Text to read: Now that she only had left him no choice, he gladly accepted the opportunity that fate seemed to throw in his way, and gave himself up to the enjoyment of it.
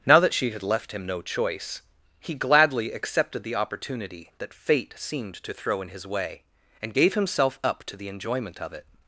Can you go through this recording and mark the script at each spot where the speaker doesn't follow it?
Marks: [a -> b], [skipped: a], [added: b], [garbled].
Now that she [skipped: only] had left him no choice, he gladly accepted the opportunity that fate seemed to throw in his way, and gave himself up to the enjoyment of it.